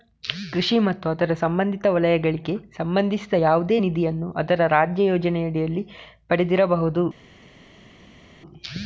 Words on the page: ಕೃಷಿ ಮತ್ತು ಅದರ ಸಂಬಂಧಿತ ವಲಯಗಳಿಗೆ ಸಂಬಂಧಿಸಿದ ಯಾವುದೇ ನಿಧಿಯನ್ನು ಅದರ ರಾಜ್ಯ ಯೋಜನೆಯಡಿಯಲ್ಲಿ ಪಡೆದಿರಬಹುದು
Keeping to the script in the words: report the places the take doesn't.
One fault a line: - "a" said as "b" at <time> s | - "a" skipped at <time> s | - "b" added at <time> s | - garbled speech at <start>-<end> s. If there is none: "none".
none